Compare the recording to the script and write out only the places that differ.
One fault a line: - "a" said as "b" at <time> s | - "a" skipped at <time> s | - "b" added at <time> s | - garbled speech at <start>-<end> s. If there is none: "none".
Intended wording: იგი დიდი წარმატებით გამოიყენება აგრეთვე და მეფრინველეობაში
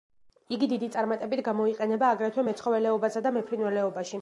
- "მეცხოველეობასა" added at 2.5 s